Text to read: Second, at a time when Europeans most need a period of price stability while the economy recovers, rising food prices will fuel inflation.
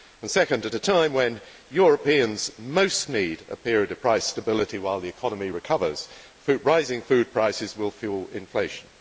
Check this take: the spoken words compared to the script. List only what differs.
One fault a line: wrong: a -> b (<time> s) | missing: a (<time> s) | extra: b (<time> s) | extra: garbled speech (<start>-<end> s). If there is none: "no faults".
no faults